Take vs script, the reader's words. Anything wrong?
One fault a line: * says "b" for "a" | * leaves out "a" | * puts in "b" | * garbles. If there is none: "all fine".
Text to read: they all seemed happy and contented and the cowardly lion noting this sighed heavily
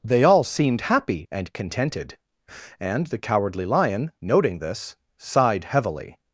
all fine